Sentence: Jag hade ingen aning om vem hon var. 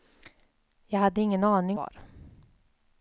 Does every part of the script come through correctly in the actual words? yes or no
no